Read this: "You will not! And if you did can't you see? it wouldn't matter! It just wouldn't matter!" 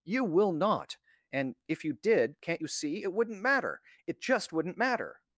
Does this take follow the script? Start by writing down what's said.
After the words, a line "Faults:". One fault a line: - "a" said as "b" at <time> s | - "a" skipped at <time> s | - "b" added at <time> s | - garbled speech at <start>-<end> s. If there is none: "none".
"You will not! And if you did can't you see? it wouldn't matter! It just wouldn't matter!"
Faults:
none